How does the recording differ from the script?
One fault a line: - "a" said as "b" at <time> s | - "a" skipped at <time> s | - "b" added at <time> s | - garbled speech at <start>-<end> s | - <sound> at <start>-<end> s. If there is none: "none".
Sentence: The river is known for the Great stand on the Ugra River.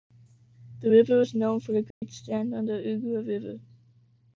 - dropout at 1.9-2.0 s